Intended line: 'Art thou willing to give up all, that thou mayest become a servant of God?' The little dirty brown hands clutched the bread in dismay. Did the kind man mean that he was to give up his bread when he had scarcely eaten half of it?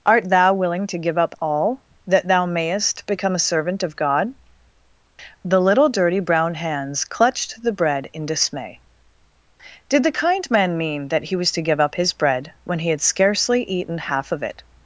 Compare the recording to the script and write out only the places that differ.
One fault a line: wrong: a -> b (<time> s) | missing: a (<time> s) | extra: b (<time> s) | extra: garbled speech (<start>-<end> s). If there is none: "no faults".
no faults